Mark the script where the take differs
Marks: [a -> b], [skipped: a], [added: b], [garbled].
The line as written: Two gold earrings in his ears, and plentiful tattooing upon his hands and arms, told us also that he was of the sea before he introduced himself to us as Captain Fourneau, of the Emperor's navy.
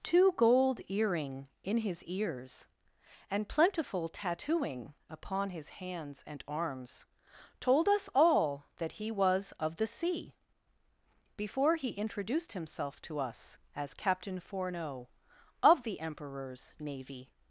Two gold [earrings -> earring] in his ears, and plentiful tattooing upon his hands and arms, told us [also -> all] that he was of the sea before he introduced himself to us as Captain Fourneau, of the Emperor's navy.